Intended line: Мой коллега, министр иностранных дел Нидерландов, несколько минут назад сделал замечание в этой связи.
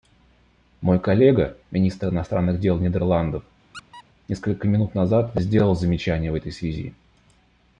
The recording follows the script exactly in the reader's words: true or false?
true